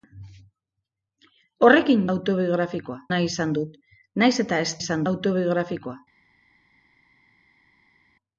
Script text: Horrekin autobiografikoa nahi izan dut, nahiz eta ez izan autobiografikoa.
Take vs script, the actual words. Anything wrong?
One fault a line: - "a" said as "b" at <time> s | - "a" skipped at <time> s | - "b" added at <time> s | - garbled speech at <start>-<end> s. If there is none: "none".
none